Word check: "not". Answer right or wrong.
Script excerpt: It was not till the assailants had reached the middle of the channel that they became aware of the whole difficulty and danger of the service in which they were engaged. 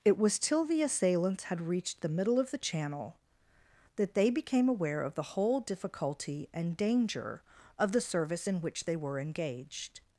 wrong